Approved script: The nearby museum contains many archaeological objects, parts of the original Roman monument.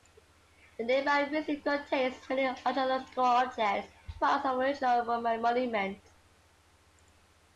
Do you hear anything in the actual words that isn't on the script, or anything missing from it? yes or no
no